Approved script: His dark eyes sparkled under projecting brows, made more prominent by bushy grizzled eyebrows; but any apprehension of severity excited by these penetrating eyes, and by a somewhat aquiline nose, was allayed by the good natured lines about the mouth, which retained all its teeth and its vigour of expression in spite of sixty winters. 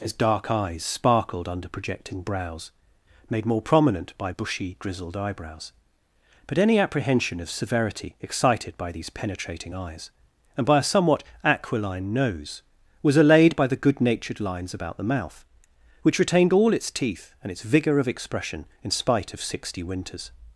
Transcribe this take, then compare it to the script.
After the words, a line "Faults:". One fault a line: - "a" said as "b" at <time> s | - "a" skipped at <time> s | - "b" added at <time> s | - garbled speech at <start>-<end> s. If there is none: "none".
His dark eyes sparkled under projecting brows, made more prominent by bushy grizzled eyebrows; but any apprehension of severity excited by these penetrating eyes, and by a somewhat aquiline nose, was allayed by the good natured lines about the mouth, which retained all its teeth and its vigour of expression in spite of sixty winters.
Faults:
none